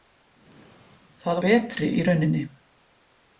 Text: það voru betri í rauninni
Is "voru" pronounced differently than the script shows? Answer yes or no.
yes